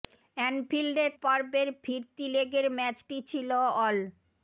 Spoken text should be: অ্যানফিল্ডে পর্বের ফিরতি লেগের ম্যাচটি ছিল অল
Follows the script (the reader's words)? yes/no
yes